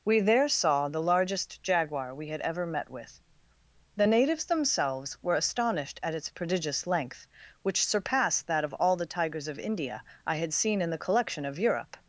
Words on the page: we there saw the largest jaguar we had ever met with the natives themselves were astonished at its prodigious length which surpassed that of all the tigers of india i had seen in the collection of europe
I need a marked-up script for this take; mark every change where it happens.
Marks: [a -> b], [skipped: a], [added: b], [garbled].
we there saw the largest jaguar we had ever met with the natives themselves were astonished at its prodigious length which surpassed that of all the tigers of india i had seen in the collection of europe